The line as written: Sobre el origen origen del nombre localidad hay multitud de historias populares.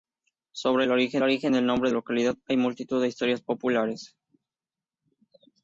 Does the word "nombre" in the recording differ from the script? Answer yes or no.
no